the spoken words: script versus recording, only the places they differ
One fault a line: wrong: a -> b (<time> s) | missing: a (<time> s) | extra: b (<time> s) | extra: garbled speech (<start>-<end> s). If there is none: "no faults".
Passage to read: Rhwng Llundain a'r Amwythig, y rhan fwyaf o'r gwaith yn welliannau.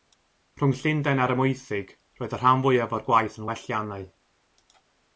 extra: roedd (2.2 s)